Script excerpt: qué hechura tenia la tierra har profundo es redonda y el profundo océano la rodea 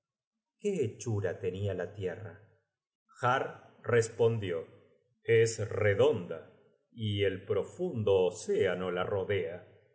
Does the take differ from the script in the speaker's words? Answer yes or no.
yes